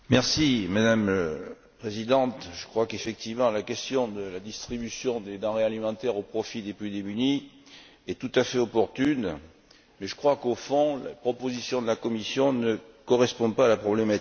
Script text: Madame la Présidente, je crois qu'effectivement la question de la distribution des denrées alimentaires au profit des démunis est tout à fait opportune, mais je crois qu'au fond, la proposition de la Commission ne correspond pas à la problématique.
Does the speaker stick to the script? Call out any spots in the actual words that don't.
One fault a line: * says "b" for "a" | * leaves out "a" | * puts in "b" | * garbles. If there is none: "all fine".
* puts in "plus"